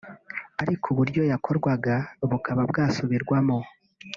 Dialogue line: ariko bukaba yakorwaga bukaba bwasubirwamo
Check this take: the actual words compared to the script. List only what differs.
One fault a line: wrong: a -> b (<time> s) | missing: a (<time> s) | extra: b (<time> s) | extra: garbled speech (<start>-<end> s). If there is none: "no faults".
wrong: bukaba -> uburyo (0.9 s)